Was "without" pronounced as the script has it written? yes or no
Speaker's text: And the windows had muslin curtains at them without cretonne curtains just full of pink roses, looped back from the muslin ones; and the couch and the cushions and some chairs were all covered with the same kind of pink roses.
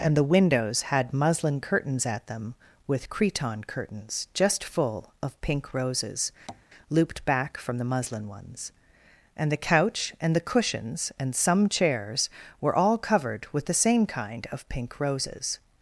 no